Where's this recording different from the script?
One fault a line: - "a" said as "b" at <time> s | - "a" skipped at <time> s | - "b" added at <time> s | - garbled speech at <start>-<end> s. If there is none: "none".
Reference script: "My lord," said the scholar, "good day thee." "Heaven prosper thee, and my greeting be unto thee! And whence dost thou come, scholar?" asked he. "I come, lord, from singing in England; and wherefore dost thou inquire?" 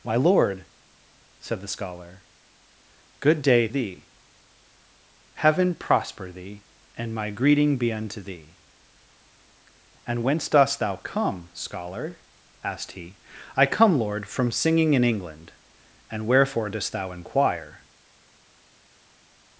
none